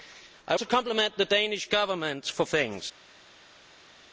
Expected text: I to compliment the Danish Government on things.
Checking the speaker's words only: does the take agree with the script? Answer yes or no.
yes